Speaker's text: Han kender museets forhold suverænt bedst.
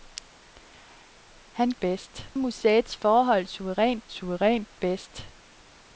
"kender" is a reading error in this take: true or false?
true